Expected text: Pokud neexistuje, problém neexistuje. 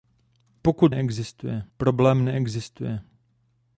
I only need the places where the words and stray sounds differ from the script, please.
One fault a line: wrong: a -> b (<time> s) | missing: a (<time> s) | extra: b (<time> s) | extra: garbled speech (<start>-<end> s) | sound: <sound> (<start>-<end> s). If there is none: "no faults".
no faults